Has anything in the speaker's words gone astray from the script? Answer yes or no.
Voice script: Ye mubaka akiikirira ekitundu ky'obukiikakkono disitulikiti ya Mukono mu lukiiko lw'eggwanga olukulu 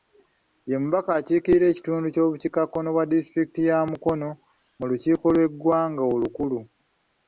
yes